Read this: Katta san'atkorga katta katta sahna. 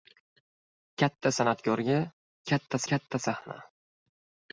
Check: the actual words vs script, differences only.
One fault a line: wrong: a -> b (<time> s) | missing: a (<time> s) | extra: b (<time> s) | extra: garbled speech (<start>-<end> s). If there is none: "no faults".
no faults